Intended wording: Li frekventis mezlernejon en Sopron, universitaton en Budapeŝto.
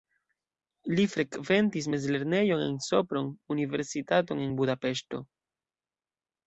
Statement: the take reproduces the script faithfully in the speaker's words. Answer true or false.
true